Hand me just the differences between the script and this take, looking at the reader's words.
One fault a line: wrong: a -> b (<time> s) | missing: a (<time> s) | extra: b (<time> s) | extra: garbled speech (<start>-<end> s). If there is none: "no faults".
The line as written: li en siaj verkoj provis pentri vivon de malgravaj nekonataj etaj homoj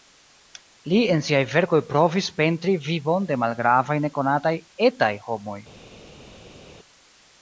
no faults